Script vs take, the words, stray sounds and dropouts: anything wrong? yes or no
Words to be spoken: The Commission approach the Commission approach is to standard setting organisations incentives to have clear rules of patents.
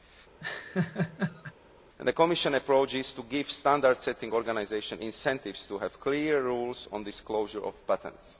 yes